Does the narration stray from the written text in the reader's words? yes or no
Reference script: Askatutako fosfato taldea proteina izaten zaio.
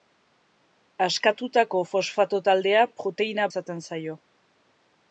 no